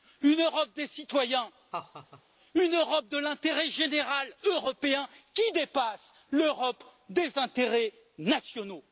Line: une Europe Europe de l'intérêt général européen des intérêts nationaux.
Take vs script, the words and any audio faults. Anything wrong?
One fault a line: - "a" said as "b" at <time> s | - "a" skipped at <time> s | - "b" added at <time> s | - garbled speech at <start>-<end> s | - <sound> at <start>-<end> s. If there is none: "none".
- "des citoyens une" added at 0.8 s
- laugh at 1.7-2.2 s
- "qui dépasse l'Europe" added at 5.3 s